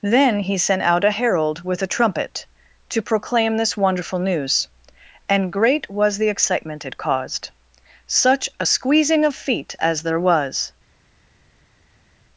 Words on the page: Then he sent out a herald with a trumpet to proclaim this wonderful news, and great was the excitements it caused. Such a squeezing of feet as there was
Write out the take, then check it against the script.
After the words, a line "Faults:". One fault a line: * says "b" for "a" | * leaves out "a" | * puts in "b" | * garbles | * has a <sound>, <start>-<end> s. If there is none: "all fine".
Then he sent out a herald with a trumpet to proclaim this wonderful news, and great was the excitement it caused. Such a squeezing of feet as there was
Faults:
* says "excitement" for "excitements"